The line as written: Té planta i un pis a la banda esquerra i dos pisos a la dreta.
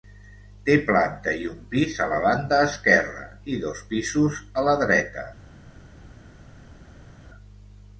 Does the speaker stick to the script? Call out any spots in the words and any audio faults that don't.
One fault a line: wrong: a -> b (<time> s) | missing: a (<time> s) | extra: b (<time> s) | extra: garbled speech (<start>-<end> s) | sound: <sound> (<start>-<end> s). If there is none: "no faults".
no faults